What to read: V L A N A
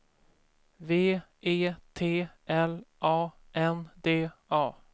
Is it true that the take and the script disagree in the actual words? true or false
true